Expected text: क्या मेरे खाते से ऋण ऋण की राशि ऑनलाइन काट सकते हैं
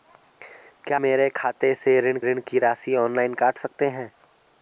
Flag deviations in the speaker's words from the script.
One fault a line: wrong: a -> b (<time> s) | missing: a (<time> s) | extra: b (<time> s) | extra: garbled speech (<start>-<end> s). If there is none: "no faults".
no faults